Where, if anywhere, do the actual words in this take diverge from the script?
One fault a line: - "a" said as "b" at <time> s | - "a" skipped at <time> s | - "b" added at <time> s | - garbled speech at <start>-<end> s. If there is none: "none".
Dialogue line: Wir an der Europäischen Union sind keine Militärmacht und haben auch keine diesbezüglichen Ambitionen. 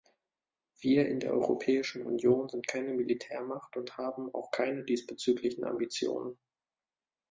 - "an" said as "in" at 1.1 s